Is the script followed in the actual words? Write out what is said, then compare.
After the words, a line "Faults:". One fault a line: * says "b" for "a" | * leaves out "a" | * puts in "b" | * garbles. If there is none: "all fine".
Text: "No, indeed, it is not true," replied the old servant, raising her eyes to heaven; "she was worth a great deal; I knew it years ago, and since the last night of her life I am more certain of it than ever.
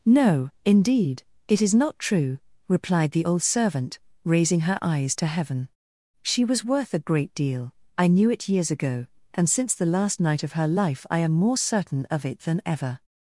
"No, indeed, it is not true," replied the old servant, raising her eyes to heaven; "she was worth a great deal; I knew it years ago, and since the last night of her life I am more certain of it than ever.
Faults:
all fine